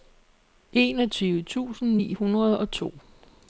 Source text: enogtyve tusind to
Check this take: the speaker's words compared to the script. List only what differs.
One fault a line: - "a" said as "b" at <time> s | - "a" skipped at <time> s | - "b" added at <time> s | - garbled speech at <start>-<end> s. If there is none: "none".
- "ni hundrede og" added at 1.9 s